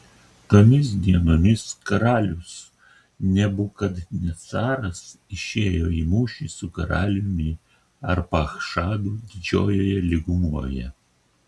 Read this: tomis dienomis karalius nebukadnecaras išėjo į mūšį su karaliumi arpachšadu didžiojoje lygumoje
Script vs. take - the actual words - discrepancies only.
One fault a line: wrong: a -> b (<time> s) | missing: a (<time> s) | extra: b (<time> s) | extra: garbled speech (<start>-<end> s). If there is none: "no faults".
no faults